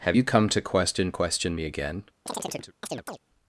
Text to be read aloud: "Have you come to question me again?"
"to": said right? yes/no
yes